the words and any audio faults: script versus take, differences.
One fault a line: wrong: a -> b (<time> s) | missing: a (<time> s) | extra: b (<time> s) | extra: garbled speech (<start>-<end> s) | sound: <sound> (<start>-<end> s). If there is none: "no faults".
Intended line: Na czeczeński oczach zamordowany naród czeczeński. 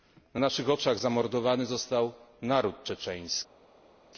wrong: czeczeński -> naszych (0.4 s)
extra: został (1.6 s)